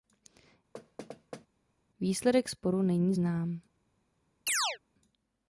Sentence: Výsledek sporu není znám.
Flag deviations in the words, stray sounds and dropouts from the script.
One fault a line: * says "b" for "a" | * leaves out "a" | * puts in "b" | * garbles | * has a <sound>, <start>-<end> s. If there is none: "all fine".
* has a thud, 0.7-1.5 s
* has a chirp, 4.5-4.8 s